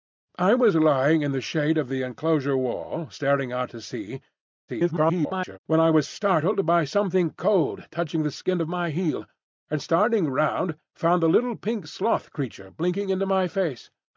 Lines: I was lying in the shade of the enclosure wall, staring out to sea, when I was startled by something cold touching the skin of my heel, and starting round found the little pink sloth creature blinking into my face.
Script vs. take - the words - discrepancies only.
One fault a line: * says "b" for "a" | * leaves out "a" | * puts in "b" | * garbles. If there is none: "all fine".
* garbles